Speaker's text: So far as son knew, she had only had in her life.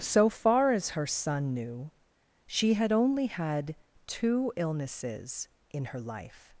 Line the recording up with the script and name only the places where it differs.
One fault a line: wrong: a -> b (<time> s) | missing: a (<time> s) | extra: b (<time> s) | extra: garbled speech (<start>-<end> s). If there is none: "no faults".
extra: her (0.9 s)
extra: two illnesses (4.1 s)